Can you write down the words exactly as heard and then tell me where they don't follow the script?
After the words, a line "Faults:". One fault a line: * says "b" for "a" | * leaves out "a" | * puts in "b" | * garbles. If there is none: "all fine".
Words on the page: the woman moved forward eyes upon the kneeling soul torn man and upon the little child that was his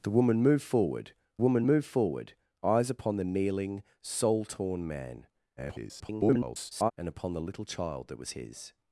the woman moved forward woman moved forward eyes upon the kneeling soul torn man [garbled] and upon the little child that was his
Faults:
* puts in "woman moved forward"
* garbles